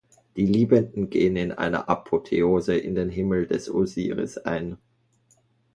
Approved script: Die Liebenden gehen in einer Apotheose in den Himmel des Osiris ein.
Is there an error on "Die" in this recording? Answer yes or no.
no